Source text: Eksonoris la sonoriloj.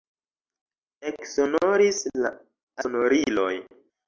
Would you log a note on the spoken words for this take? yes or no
no